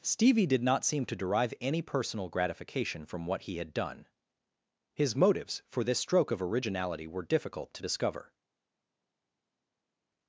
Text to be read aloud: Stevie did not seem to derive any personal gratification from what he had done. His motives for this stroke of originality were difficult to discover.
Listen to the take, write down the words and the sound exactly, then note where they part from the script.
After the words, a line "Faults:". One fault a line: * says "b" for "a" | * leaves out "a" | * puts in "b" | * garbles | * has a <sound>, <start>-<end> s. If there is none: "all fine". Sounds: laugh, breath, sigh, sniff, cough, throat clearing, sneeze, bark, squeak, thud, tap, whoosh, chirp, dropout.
Stevie did not seem to derive any personal gratification from what he had done. His motives for this stroke of originality were difficult to discover.
Faults:
all fine